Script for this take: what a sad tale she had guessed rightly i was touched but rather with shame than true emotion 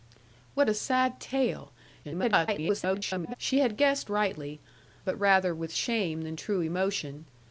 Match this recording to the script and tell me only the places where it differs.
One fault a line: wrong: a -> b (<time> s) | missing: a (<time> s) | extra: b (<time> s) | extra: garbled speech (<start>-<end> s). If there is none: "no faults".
extra: garbled speech (2.0-3.4 s)
missing: i was touched (4.6 s)